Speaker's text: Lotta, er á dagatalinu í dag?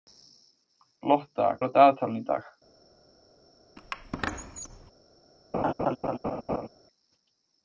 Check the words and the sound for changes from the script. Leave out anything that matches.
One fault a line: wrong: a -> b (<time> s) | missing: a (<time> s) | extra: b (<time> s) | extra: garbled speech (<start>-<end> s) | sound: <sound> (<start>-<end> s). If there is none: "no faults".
sound: squeak (3.8-4.9 s)
sound: laugh (5.5-6.7 s)